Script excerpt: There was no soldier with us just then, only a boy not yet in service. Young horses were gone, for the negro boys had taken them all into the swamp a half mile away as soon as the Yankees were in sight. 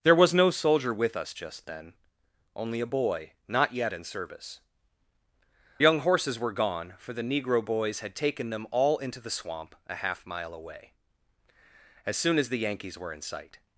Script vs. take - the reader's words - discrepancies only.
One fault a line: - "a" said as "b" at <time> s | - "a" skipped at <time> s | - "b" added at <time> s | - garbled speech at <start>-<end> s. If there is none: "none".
none